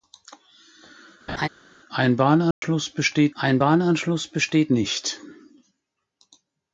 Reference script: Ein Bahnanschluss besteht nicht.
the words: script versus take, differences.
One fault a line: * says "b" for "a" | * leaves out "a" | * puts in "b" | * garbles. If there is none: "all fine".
* puts in "ein Bahnanschluss besteht"